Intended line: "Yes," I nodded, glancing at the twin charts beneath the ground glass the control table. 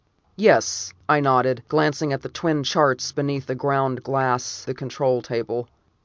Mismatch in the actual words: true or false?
false